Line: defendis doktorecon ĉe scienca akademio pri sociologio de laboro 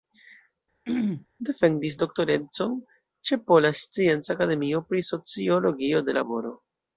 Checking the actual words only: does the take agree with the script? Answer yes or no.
no